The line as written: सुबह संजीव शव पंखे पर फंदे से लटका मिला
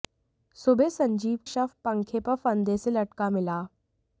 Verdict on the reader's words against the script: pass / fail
pass